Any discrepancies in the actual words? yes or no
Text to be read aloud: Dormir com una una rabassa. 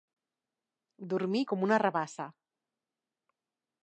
yes